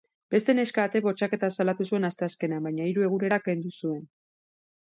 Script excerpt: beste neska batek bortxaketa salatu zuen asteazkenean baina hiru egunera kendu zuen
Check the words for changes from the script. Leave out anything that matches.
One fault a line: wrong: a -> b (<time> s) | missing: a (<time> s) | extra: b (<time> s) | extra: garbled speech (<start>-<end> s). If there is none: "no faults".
no faults